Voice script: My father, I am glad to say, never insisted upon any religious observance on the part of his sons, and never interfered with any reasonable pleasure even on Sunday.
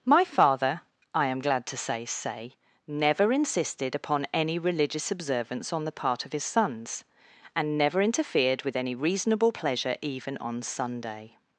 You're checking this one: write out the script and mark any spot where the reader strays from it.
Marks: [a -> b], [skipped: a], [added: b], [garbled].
My father, I am glad to say, [added: say] never insisted upon any religious observance on the part of his sons, and never interfered with any reasonable pleasure even on Sunday.